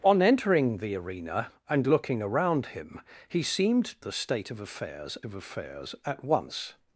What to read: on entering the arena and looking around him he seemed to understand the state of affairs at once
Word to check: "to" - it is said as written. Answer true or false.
false